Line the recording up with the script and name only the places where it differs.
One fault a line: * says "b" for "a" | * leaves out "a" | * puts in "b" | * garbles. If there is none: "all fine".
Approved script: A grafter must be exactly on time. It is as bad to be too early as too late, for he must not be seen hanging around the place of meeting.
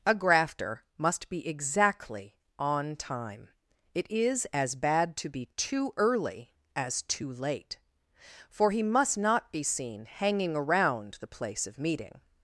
all fine